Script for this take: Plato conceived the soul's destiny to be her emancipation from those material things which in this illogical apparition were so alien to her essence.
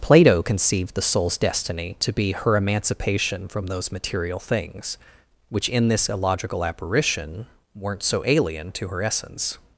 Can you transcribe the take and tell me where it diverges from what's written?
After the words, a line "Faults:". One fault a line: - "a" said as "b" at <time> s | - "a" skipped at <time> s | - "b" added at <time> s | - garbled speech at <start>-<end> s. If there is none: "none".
Plato conceived the soul's destiny to be her emancipation from those material things which in this illogical apparition weren't so alien to her essence.
Faults:
- "were" said as "weren't" at 7.7 s